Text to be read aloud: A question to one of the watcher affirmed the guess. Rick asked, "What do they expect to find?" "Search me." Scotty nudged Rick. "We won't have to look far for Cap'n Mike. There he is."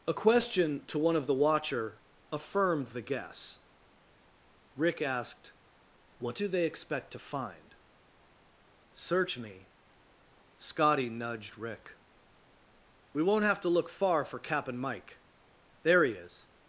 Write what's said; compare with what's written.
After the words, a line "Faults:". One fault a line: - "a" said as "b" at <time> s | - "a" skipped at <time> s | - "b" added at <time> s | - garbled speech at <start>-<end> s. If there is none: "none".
A question to one of the watcher affirmed the guess. Rick asked, "What do they expect to find?" "Search me." Scotty nudged Rick. "We won't have to look far for Cap'n Mike. There he is."
Faults:
none